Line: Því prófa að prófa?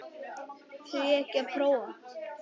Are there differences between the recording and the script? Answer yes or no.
yes